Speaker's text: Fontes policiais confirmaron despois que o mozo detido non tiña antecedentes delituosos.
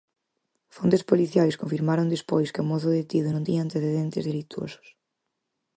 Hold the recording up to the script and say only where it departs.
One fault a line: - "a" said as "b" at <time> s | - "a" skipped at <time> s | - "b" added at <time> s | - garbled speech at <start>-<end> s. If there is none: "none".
none